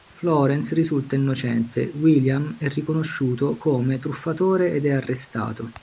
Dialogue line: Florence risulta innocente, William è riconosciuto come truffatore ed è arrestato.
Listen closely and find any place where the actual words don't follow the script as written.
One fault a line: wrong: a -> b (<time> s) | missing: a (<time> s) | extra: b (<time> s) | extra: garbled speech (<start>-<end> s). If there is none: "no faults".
no faults